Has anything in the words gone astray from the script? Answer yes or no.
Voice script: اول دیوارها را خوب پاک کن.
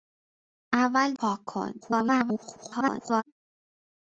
yes